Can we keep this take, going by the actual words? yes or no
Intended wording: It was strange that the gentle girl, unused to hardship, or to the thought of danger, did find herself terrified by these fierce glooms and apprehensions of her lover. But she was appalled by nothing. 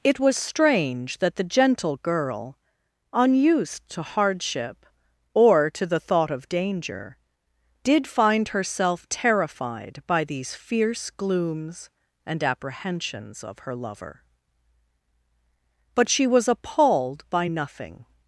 yes